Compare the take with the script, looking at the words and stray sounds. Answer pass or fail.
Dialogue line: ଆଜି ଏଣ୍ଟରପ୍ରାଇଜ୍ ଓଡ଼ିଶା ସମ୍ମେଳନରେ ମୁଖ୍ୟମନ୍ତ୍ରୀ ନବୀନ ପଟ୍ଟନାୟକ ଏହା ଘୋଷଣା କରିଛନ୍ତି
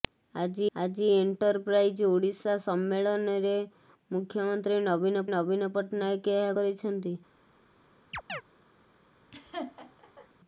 fail